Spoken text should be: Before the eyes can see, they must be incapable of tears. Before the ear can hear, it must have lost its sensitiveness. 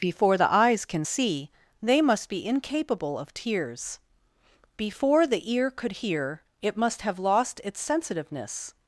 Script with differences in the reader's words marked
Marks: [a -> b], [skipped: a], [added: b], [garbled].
Before the eyes can see, they must be incapable of tears. Before the ear [can -> could] hear, it must have lost its sensitiveness.